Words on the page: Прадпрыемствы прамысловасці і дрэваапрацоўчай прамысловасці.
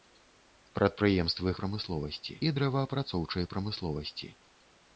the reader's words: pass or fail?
pass